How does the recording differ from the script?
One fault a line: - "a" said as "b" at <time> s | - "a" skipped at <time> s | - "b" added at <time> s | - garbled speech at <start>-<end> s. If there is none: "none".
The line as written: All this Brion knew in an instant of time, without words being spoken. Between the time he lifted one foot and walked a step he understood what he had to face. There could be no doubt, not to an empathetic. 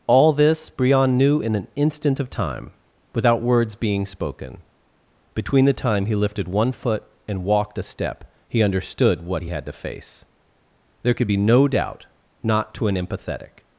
none